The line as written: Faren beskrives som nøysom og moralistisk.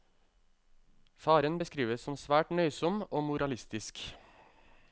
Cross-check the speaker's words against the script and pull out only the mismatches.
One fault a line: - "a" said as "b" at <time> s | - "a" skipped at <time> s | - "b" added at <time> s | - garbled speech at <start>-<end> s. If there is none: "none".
- "svært" added at 2.2 s